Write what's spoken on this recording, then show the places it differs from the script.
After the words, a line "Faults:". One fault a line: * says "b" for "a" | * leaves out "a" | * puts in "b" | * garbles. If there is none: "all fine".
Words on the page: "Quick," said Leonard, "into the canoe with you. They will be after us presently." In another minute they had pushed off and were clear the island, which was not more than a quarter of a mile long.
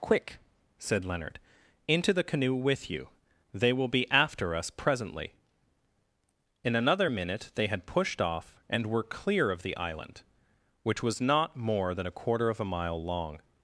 "Quick," said Leonard, "into the canoe with you. They will be after us presently." In another minute they had pushed off and were clear of the island, which was not more than a quarter of a mile long.
Faults:
* puts in "of"